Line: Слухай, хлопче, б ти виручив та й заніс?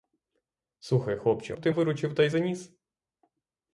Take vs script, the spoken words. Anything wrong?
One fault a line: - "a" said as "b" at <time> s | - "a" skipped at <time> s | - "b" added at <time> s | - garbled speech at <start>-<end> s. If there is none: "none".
none